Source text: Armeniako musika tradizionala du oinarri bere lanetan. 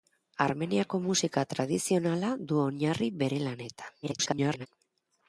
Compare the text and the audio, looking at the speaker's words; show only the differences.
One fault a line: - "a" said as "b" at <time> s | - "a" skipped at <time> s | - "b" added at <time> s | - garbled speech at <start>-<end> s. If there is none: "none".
- garbled speech at 4.0-4.7 s